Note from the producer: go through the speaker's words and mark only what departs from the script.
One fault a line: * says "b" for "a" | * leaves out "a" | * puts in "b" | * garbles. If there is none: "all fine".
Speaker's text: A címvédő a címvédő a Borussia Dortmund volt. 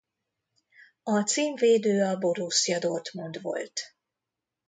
* leaves out "címvédő a"